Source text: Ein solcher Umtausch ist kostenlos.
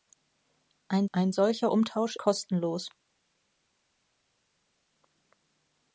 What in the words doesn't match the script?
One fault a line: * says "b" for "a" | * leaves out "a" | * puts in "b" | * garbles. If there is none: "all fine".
* puts in "ein"
* leaves out "ist"